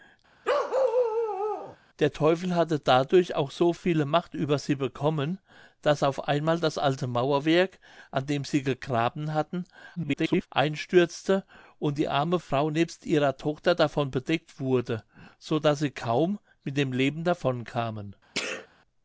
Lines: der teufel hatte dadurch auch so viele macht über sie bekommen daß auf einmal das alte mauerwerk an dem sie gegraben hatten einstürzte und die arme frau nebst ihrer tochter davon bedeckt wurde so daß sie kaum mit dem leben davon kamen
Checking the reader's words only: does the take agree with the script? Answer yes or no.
no